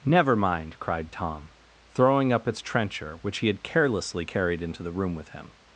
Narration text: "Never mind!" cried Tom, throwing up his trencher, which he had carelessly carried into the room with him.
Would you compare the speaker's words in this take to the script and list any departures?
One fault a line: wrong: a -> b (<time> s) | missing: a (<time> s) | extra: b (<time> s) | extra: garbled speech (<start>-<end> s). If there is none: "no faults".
wrong: his -> its (2.5 s)